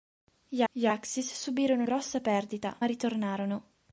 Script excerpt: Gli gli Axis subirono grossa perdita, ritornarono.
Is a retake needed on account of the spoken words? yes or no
no